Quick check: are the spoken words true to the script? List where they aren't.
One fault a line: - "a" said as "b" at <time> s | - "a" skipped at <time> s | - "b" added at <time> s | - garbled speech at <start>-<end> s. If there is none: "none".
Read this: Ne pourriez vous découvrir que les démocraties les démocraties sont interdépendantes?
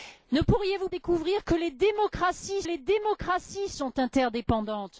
none